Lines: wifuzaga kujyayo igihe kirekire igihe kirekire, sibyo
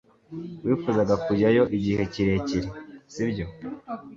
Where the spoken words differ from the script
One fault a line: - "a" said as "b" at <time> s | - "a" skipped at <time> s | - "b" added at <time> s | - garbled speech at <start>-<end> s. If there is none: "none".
- "igihe kirekire" skipped at 2.7 s